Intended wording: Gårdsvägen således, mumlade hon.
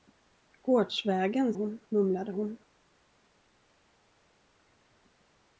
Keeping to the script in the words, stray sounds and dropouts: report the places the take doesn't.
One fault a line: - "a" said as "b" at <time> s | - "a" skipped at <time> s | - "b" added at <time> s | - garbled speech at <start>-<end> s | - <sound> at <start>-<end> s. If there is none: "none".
- "således" said as "hon" at 1.5 s